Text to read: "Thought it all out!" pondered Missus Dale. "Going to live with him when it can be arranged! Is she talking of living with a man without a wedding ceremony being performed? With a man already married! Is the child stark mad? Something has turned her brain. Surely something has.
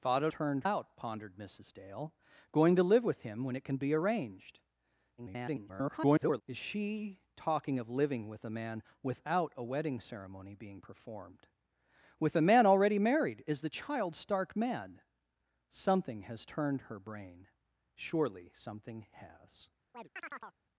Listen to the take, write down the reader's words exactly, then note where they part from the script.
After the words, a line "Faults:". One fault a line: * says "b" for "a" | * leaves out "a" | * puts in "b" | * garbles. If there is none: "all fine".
"Thought it turned out!" pondered Missus Dale. "Going to live with him when it can be arranged! [garbled] Is she talking of living with a man without a wedding ceremony being performed? With a man already married! Is the child stark mad? Something has turned her brain. Surely something has.
Faults:
* says "turned" for "all"
* garbles